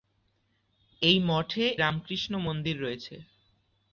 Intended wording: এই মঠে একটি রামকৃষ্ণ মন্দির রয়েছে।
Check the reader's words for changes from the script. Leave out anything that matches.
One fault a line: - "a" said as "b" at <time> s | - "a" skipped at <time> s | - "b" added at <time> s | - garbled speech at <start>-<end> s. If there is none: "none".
- "একটি" skipped at 1.6 s